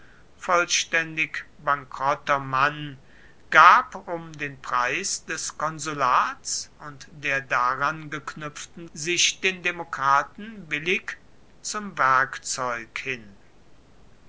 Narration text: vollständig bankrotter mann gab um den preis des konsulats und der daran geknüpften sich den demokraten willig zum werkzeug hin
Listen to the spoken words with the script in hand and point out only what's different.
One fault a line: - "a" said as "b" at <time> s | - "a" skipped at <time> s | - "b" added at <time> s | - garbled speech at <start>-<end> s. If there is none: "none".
none